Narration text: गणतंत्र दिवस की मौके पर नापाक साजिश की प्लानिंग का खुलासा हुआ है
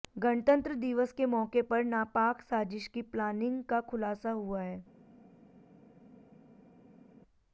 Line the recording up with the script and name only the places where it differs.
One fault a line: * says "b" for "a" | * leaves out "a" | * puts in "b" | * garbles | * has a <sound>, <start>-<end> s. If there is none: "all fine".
* says "के" for "की"